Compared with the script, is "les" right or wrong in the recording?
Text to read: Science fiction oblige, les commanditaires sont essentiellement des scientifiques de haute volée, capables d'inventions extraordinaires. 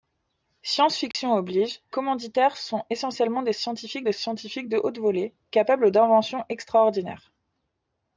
wrong